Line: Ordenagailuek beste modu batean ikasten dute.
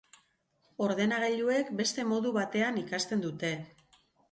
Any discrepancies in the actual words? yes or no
no